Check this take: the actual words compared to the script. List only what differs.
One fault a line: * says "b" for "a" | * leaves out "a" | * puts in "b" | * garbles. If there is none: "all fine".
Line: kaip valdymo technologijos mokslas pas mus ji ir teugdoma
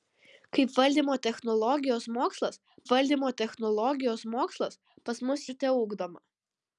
* puts in "valdymo technologijos mokslas"
* leaves out "ji"